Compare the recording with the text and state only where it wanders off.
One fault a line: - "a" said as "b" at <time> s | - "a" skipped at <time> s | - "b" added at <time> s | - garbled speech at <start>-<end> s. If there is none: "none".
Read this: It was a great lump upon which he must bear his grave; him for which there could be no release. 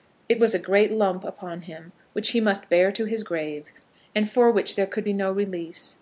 - "him" added at 1.6 s
- "to" added at 2.9 s
- "him" said as "and" at 4.1 s